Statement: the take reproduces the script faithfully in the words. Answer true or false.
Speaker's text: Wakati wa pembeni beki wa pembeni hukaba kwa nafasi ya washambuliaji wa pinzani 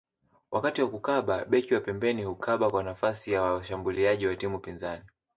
false